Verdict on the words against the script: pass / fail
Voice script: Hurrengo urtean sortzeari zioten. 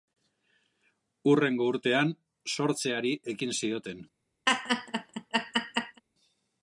fail